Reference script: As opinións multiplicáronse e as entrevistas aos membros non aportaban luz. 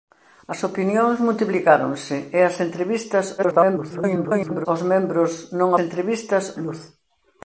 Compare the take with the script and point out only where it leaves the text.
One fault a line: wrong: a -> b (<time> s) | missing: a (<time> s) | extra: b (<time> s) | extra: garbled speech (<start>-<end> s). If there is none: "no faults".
extra: garbled speech (3.4-4.7 s)
wrong: aportaban -> entrevistas (5.9 s)